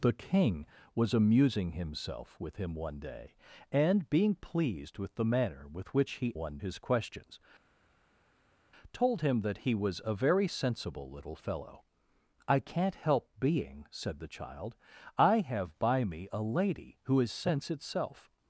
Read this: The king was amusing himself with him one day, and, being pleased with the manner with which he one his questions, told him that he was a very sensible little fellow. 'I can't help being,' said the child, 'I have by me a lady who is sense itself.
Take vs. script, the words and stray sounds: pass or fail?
pass